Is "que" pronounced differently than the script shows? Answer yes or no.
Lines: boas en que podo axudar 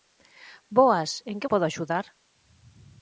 no